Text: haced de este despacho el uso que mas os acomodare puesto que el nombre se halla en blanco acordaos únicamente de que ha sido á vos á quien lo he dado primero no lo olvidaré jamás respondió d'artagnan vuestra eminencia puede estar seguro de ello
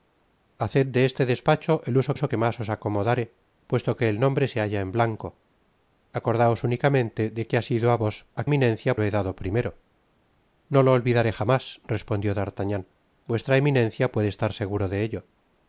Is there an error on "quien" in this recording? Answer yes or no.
yes